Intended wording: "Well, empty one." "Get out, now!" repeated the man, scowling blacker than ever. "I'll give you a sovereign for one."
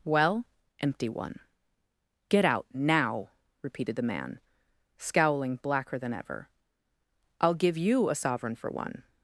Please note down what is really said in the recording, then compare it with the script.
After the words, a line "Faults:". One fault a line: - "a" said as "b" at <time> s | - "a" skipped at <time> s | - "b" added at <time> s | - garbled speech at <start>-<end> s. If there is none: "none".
"Well, empty one." "Get out, now!" repeated the man, scowling blacker than ever. "I'll give you a sovereign for one."
Faults:
none